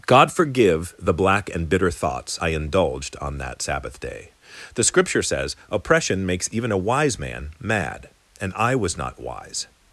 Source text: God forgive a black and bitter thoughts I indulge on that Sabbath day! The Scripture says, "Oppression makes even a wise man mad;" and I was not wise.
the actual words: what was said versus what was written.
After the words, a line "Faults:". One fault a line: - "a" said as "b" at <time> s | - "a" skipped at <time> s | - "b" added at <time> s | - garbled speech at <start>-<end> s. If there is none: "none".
God forgive the black and bitter thoughts I indulged on that Sabbath day! The Scripture says, "Oppression makes even a wise man mad;" and I was not wise.
Faults:
- "a" said as "the" at 1.0 s
- "indulge" said as "indulged" at 2.5 s